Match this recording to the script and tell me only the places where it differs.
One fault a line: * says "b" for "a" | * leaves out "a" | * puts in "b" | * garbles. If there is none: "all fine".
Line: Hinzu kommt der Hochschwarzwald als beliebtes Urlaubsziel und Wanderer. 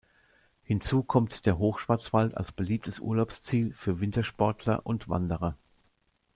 * puts in "für Wintersportler"